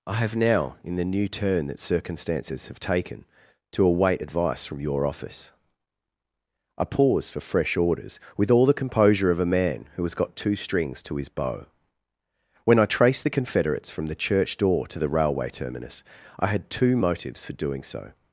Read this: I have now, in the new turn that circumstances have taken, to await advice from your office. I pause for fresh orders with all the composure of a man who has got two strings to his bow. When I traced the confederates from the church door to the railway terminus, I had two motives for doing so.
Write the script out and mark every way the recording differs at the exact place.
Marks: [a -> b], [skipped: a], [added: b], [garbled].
I have now, in the new turn that circumstances have taken, to await advice from your office. I pause for fresh orders with all the composure of a man who has got two strings to his bow. When I traced the confederates from the church door to the railway terminus, I had two motives for doing so.